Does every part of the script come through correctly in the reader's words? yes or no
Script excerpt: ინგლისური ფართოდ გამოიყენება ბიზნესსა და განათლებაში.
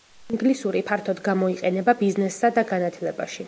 yes